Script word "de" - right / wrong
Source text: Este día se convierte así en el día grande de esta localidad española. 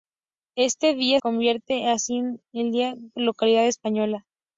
wrong